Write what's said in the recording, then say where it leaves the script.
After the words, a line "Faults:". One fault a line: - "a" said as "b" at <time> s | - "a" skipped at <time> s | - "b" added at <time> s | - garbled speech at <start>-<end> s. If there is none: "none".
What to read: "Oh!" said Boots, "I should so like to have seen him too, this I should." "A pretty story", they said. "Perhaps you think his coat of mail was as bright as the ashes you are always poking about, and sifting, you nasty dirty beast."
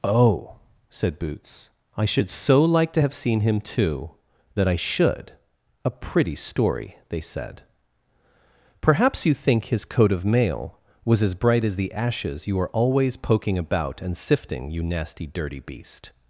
"Oh!" said Boots, "I should so like to have seen him too, that I should." "A pretty story", they said. "Perhaps you think his coat of mail was as bright as the ashes you are always poking about, and sifting, you nasty dirty beast."
Faults:
- "this" said as "that" at 4.5 s